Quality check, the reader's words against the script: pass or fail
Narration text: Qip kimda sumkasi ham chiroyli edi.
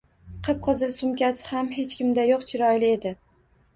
fail